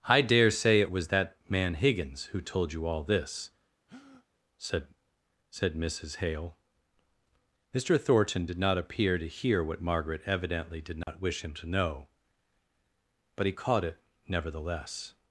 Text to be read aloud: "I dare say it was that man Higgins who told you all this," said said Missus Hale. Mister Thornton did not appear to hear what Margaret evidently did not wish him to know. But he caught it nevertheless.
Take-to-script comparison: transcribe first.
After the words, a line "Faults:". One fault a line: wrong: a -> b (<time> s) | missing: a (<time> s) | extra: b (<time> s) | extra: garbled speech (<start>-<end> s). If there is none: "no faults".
"I dare say it was that man Higgins who told you all this," said said Missus Hale. Mister Thornton did not appear to hear what Margaret evidently did not wish him to know. But he caught it nevertheless.
Faults:
no faults